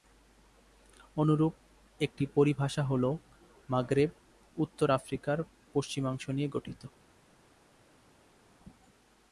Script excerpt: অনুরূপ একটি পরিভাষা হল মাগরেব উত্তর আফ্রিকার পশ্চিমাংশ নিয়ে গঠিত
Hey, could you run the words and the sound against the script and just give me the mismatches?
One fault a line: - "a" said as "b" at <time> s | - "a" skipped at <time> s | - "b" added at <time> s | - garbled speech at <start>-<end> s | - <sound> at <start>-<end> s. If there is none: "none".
none